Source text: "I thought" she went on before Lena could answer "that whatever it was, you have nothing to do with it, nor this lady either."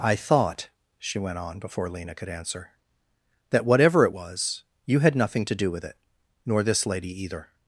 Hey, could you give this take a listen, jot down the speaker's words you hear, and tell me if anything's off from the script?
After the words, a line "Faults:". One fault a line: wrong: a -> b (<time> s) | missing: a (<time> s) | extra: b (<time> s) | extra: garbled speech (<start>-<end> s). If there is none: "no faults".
"I thought" she went on before Lena could answer "that whatever it was, you had nothing to do with it, nor this lady either."
Faults:
wrong: have -> had (5.0 s)